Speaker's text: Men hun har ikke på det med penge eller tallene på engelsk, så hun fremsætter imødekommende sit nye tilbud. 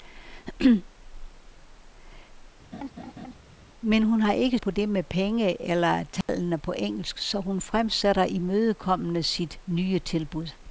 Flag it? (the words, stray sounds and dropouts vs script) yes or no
yes